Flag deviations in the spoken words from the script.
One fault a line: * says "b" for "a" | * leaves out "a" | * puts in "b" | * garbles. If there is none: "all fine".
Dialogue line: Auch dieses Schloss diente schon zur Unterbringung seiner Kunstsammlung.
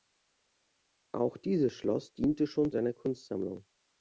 * leaves out "zur Unterbringung"